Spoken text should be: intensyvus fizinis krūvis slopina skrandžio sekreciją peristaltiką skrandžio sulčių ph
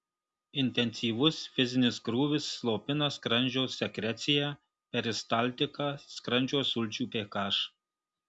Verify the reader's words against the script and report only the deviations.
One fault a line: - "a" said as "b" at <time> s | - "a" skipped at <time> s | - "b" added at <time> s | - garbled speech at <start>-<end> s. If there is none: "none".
none